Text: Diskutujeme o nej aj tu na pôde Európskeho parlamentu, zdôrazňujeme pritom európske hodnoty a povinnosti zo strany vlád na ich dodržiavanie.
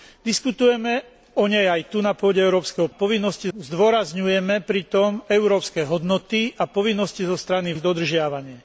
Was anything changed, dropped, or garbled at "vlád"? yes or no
yes